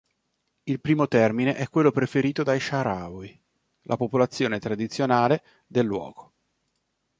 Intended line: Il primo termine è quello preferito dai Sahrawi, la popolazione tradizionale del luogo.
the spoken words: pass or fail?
pass